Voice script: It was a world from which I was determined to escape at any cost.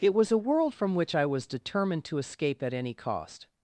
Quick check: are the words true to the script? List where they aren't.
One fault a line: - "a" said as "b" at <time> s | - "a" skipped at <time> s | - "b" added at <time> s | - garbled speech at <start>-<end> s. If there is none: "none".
none